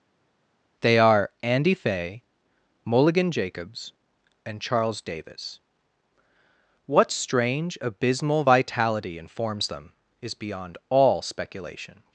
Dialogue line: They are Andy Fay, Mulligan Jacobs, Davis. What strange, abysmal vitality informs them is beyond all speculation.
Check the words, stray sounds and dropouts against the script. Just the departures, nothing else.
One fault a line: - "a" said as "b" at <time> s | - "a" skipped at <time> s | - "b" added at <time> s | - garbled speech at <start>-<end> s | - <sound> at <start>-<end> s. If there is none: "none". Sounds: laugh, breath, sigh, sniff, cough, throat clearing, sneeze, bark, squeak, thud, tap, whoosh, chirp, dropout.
- "and Charles" added at 4.5 s